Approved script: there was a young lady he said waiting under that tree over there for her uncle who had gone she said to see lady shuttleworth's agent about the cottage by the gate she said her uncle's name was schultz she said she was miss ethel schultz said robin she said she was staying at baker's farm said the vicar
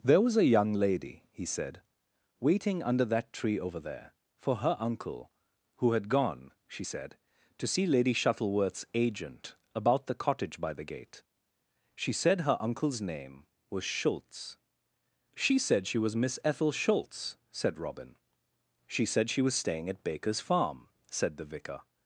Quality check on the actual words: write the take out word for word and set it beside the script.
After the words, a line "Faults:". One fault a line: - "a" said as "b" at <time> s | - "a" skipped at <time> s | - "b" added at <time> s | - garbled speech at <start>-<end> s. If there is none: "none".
there was a young lady he said waiting under that tree over there for her uncle who had gone she said to see lady shuttleworth's agent about the cottage by the gate she said her uncle's name was schultz she said she was miss ethel schultz said robin she said she was staying at baker's farm said the vicar
Faults:
none